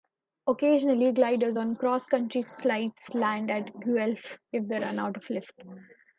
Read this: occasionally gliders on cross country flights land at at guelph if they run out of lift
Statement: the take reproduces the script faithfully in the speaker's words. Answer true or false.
false